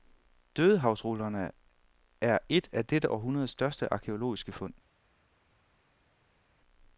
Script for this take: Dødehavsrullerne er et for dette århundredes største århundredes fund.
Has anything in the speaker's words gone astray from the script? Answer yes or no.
yes